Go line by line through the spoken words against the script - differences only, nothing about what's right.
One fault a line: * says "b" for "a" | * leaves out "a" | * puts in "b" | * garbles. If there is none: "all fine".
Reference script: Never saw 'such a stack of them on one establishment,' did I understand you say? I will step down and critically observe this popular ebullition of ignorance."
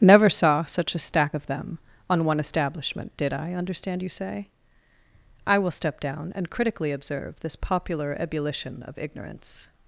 all fine